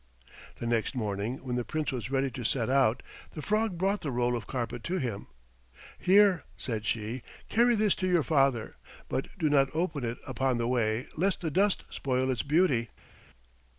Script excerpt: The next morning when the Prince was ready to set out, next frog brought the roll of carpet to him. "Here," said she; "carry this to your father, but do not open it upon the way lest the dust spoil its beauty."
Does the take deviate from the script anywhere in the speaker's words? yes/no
yes